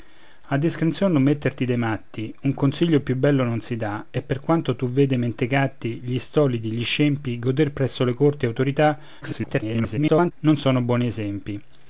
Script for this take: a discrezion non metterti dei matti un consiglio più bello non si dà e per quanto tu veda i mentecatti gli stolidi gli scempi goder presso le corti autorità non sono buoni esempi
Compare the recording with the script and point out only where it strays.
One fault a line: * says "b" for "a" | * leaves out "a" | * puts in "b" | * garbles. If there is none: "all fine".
* garbles